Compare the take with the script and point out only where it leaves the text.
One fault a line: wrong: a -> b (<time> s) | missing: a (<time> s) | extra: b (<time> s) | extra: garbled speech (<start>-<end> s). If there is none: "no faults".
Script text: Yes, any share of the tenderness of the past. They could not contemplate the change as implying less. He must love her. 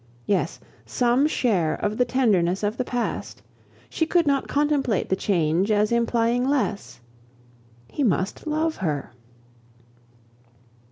wrong: any -> some (0.8 s)
wrong: They -> She (3.9 s)